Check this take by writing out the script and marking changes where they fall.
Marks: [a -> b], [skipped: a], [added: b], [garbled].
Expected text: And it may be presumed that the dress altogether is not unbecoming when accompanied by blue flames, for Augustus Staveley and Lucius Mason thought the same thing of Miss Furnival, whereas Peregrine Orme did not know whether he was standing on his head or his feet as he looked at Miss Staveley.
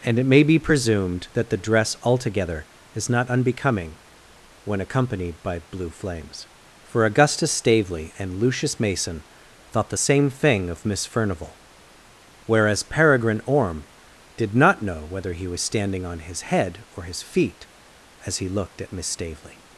And it may be presumed that the dress altogether is not unbecoming when accompanied by blue flames, for Augustus Staveley and Lucius Mason thought the same thing of Miss Furnival, whereas Peregrine Orme did not know whether he was standing on his head or his feet as he looked at Miss Staveley.